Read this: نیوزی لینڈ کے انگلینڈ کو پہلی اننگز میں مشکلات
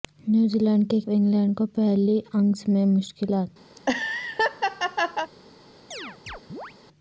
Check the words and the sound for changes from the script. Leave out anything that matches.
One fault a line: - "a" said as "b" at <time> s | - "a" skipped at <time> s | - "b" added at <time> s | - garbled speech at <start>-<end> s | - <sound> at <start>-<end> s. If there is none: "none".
- laugh at 3.8-5.3 s
- chirp at 5.9-6.7 s